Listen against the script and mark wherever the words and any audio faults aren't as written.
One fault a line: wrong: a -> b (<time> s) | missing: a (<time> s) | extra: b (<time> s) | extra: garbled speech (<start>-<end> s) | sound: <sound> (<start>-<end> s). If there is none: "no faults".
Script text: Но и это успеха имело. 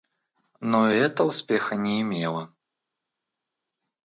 extra: не (1.7 s)